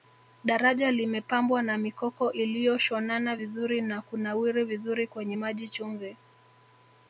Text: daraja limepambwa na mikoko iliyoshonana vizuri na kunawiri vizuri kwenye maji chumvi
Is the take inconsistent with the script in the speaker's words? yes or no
no